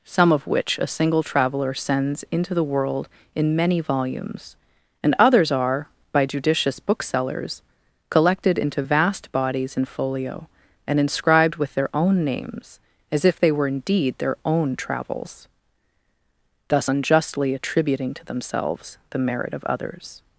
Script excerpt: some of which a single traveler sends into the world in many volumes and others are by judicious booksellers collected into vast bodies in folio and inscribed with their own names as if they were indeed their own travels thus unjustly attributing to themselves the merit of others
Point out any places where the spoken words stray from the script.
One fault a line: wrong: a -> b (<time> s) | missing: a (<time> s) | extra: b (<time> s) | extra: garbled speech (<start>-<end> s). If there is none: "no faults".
no faults